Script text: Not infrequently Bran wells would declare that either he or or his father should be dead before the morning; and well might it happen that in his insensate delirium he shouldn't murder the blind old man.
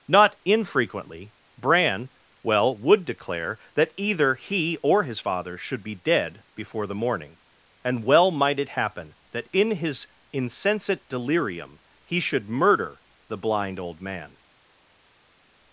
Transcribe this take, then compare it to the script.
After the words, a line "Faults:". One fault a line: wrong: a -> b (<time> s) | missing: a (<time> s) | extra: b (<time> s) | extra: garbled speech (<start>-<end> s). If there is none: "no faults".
Not infrequently Bran well would declare that either he or his father should be dead before the morning; and well might it happen that in his insensate delirium he should murder the blind old man.
Faults:
wrong: wells -> well (2.4 s)
missing: or (5.0 s)
wrong: shouldn't -> should (12.2 s)